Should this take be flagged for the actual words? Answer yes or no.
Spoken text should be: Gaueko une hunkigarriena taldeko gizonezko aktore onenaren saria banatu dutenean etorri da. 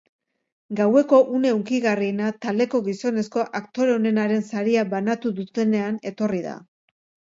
no